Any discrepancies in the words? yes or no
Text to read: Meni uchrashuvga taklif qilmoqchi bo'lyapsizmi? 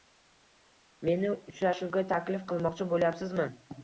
no